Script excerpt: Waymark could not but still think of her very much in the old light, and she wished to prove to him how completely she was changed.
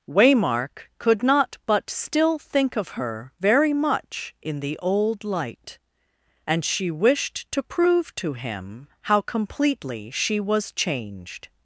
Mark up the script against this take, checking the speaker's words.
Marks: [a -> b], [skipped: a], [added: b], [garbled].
Waymark could not but still think of her very much in the old light, and she wished to prove to him how completely she was changed.